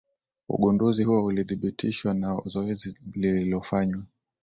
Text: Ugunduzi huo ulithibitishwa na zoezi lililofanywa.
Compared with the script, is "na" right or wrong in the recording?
right